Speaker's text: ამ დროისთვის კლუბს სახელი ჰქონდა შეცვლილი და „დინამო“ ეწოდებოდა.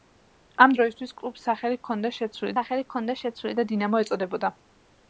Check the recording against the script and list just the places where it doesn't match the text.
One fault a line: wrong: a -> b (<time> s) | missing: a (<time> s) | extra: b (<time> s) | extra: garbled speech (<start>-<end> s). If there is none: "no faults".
extra: სახელი ჰქონდა შეცვლილი (2.6 s)